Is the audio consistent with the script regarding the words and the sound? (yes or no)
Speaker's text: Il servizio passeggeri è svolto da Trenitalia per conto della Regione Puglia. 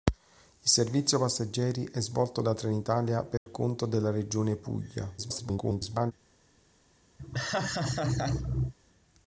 no